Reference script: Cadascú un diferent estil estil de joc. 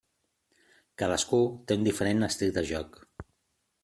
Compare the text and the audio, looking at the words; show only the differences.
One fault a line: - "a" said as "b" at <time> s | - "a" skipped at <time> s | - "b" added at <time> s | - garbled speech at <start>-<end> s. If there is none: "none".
- "té" added at 1.7 s
- "estil" skipped at 2.6 s